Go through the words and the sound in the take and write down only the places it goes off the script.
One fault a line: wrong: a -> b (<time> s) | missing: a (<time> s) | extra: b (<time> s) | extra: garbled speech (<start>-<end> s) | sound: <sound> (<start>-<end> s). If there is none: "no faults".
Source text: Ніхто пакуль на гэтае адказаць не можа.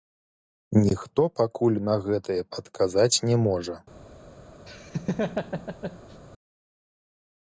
sound: laugh (4.7-6.2 s)